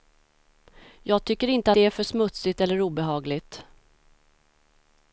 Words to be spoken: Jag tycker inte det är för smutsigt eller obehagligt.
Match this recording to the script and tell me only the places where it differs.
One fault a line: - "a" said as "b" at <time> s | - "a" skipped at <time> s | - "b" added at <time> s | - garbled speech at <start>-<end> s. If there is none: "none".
none